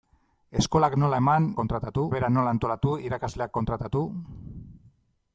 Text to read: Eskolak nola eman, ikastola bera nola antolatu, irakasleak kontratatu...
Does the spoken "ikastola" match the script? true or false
false